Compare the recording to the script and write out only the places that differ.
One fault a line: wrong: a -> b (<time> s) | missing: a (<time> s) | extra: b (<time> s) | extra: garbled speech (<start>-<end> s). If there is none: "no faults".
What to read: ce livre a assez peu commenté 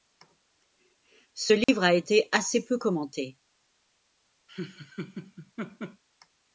extra: été (1.9 s)